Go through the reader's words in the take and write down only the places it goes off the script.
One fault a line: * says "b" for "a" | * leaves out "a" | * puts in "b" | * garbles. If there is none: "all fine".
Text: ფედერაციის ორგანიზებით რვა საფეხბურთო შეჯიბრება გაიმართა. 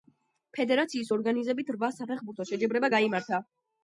all fine